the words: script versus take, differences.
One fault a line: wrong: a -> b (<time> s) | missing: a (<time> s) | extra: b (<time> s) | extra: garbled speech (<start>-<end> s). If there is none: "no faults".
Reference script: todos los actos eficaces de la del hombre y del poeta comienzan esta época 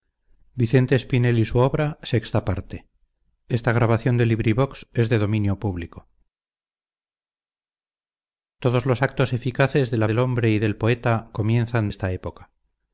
no faults